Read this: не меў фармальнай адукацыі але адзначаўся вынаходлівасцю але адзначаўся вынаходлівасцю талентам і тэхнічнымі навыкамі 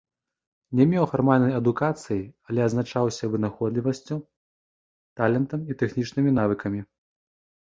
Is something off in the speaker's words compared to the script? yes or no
yes